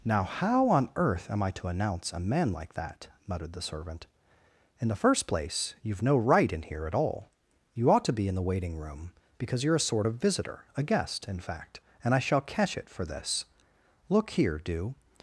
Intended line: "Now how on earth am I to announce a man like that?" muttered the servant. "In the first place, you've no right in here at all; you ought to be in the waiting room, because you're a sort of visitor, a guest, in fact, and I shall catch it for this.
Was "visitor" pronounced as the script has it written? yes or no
yes